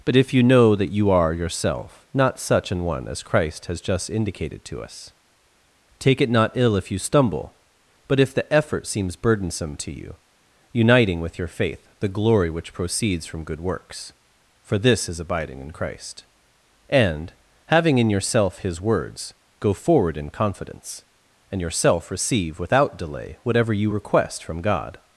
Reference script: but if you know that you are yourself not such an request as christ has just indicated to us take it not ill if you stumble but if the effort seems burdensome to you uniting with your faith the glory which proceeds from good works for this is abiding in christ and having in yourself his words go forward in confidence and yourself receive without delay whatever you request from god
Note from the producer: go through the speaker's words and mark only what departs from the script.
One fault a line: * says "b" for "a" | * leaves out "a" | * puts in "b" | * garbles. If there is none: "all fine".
* says "one" for "request"